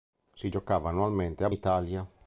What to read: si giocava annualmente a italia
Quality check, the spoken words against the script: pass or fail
pass